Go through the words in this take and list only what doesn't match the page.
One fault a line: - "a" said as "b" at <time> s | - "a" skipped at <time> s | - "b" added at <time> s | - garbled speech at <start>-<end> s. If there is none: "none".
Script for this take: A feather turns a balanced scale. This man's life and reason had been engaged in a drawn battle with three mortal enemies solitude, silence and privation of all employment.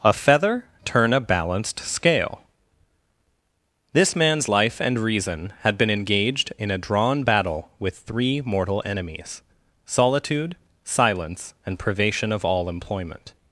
- "turns" said as "turn" at 0.9 s